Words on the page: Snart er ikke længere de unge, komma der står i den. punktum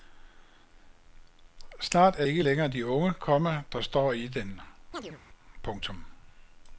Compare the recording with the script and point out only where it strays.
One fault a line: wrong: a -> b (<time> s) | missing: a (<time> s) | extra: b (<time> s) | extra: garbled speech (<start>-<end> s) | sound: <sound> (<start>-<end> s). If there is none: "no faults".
sound: chirp (4.9-5.2 s)